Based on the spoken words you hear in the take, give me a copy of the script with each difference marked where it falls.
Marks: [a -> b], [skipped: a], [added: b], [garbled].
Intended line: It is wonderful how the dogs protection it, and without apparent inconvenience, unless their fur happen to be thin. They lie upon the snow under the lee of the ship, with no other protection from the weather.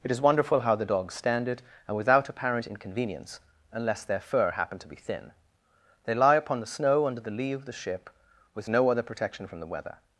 It is wonderful how the dogs [protection -> stand] it, and without apparent inconvenience, unless their fur happen to be thin. They lie upon the snow under the lee of the ship, with no other protection from the weather.